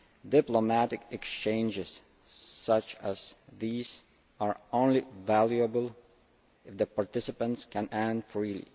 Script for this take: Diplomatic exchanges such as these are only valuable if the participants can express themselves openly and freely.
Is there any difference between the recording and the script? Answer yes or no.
yes